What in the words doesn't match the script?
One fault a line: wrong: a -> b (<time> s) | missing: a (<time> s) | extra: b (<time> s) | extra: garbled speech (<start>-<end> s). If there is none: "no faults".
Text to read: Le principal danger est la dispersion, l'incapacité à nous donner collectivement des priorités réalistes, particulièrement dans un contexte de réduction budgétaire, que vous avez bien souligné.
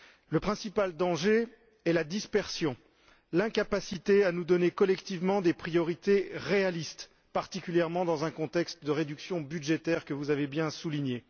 no faults